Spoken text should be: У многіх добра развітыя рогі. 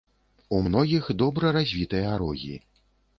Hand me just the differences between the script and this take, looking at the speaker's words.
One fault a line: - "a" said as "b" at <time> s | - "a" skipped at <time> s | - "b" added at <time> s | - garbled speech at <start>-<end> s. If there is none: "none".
none